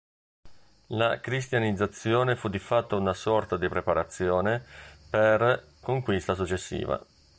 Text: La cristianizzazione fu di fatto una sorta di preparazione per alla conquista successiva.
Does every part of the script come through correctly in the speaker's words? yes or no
no